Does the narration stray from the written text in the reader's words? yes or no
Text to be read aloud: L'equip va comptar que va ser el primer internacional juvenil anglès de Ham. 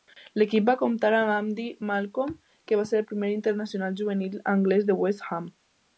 yes